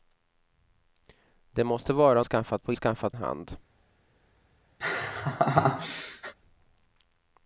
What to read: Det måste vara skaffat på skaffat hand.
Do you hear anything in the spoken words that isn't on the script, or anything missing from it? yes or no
no